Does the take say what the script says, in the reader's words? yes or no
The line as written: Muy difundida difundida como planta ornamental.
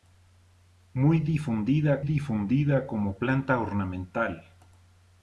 yes